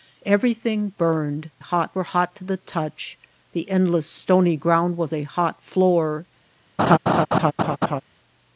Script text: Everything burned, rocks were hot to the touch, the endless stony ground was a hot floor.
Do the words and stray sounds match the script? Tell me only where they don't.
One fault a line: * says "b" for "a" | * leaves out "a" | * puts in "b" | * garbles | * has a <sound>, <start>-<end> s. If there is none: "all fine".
* says "hot" for "rocks"
* has a laugh, 6.8-8.0 s